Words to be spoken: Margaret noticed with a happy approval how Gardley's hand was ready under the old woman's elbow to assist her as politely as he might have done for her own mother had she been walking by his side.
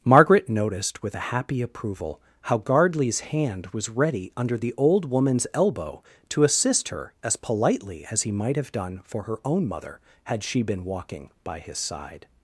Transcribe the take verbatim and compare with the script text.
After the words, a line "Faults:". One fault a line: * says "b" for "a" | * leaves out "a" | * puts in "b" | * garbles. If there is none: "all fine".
Margaret noticed with a happy approval how Gardley's hand was ready under the old woman's elbow to assist her as politely as he might have done for her own mother had she been walking by his side.
Faults:
all fine